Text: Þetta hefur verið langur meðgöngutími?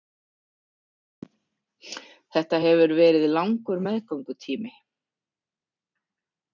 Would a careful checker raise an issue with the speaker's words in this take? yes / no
no